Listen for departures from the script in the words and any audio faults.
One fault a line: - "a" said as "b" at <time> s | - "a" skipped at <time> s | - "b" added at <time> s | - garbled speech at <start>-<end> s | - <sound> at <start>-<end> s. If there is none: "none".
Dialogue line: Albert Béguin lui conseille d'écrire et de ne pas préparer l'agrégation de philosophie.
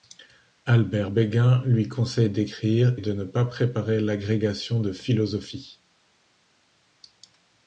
- "et" skipped at 3.0 s